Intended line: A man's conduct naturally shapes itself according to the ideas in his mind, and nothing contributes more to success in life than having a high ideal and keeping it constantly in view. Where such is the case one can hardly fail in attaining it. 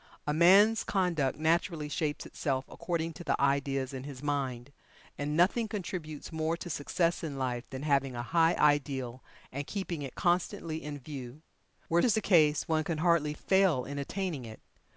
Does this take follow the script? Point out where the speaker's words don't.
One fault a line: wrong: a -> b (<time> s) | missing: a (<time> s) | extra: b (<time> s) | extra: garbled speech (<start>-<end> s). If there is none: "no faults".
missing: such (12.0 s)